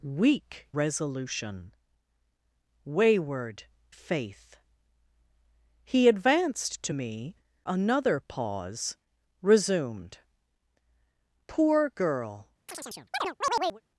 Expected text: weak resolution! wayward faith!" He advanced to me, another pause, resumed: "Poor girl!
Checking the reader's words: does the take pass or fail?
pass